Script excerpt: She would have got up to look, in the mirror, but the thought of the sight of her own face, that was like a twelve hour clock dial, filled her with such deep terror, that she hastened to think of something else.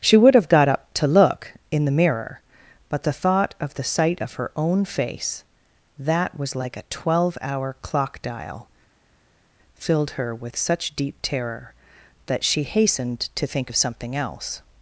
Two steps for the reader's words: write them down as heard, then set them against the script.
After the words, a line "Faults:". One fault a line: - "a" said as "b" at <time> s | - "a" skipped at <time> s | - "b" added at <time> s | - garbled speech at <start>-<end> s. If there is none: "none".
She would have got up to look, in the mirror, but the thought of the sight of her own face, that was like a twelve hour clock dial, filled her with such deep terror, that she hastened to think of something else.
Faults:
none